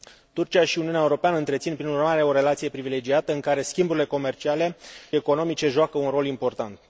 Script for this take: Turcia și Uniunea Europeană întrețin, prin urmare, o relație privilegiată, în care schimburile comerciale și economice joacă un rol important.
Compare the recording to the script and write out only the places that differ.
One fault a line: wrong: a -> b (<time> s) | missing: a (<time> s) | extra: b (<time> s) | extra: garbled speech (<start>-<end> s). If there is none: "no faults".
missing: și (4.8 s)